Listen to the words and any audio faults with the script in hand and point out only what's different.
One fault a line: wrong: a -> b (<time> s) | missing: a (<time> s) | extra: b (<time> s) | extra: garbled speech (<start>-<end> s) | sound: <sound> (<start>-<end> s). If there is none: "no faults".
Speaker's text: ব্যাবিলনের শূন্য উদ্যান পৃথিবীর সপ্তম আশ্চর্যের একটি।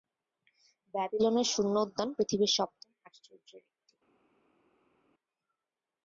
no faults